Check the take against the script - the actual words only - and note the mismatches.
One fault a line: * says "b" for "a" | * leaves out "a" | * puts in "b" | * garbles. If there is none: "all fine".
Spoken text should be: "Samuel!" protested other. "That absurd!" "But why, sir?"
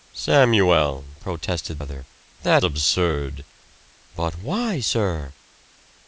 all fine